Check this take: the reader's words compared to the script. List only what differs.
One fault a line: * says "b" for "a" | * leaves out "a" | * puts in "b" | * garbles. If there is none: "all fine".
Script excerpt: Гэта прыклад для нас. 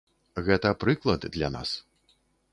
all fine